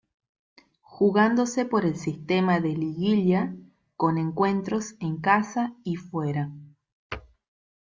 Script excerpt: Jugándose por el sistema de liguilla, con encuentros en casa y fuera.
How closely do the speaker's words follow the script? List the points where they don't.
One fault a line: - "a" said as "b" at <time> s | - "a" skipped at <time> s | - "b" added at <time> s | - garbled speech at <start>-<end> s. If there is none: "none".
none